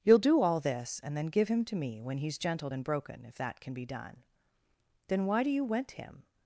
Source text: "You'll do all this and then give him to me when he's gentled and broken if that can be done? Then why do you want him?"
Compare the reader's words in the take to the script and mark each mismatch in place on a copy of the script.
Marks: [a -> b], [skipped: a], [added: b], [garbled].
"You'll do all this and then give him to me when he's gentled and broken if that can be done? Then why do you [want -> went] him?"